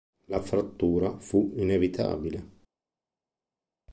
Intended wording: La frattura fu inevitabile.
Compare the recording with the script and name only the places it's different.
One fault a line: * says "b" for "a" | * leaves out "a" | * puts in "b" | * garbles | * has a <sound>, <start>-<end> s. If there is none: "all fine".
all fine